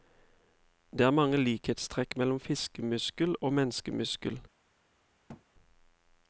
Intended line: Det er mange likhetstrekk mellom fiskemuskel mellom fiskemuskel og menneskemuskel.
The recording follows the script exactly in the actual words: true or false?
false